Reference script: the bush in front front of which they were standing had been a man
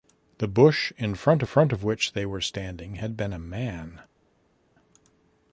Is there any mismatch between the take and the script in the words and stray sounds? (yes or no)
no